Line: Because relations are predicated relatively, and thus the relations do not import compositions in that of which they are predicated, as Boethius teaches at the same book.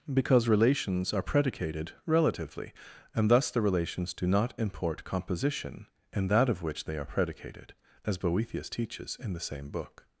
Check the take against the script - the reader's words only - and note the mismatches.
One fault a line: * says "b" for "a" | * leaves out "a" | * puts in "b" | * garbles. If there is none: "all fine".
* says "composition" for "compositions"
* says "in" for "at"